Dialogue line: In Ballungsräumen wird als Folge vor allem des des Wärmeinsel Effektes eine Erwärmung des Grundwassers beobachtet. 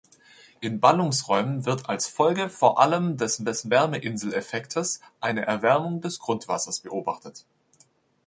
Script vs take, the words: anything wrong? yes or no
no